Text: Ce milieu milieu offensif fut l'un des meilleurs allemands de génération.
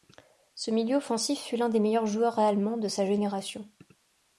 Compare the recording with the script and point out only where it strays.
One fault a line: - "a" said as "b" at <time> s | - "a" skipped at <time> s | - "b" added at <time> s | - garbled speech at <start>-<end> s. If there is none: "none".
- "milieu" skipped at 0.9 s
- "joueurs" added at 2.1 s
- "sa" added at 2.9 s